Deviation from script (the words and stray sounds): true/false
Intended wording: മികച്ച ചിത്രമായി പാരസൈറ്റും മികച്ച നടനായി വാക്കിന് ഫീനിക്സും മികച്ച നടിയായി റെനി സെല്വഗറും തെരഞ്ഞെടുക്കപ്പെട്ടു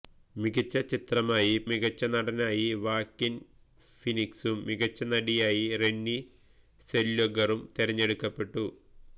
true